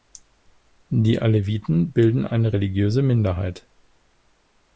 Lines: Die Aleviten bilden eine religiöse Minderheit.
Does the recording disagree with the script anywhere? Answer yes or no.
no